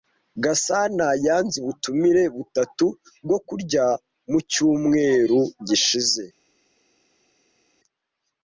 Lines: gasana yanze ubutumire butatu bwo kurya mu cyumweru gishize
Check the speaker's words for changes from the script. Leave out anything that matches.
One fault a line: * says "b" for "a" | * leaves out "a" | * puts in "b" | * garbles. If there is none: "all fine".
all fine